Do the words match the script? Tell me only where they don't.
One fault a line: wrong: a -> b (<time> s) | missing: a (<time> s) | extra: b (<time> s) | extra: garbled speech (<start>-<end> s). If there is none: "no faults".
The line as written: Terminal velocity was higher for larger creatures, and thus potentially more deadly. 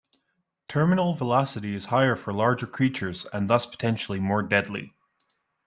wrong: was -> is (1.8 s)